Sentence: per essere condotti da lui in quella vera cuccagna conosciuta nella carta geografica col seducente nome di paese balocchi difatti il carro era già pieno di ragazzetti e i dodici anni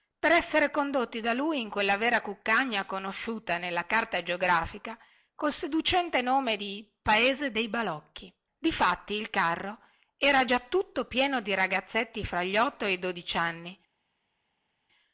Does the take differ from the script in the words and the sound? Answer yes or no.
yes